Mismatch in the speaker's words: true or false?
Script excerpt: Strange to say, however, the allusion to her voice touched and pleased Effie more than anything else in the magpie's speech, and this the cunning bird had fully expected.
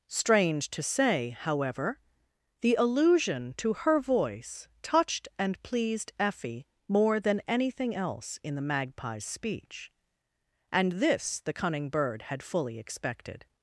false